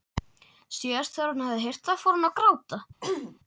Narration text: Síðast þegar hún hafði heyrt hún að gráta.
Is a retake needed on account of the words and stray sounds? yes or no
yes